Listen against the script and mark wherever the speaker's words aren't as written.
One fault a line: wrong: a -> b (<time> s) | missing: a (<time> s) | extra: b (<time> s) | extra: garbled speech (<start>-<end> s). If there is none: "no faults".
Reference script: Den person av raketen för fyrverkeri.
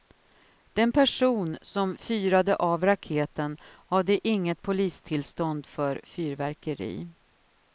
extra: som fyrade (1.6 s)
extra: hade inget polistillstånd (3.9 s)